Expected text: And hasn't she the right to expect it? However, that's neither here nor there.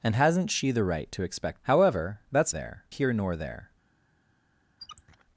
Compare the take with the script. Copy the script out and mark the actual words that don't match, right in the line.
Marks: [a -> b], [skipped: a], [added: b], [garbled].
And hasn't she the right to expect [skipped: it?] However, that's [neither -> there] here nor there.